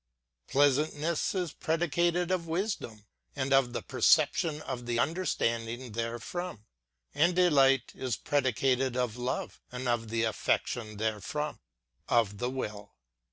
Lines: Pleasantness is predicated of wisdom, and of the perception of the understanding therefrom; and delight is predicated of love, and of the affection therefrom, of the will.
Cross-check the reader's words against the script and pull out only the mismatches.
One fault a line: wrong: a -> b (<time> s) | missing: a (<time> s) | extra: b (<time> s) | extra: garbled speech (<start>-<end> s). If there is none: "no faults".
no faults